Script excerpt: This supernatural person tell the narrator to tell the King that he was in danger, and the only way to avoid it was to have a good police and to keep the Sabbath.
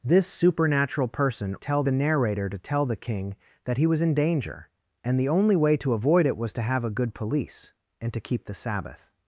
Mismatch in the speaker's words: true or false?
false